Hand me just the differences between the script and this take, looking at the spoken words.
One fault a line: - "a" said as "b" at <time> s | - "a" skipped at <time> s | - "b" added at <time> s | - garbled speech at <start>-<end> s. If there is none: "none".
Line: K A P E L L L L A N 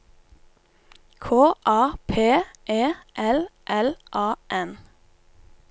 - "L L" skipped at 3.9 s